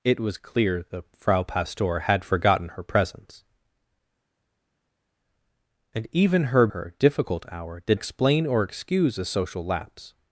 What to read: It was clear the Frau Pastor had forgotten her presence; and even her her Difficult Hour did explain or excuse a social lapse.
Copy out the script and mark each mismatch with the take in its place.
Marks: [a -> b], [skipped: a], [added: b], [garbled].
It was clear the Frau Pastor had forgotten her presence; and even her her Difficult Hour did explain or excuse a social lapse.